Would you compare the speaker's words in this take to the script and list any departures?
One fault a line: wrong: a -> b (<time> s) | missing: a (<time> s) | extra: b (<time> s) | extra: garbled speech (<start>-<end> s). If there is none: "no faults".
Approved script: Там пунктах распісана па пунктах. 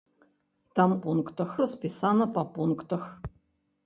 no faults